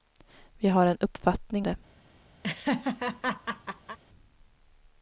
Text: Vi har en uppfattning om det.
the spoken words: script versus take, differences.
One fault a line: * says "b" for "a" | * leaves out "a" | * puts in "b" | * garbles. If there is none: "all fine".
* leaves out "om"